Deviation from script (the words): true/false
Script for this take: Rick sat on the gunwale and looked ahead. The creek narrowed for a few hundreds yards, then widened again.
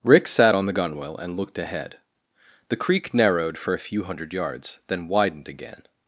true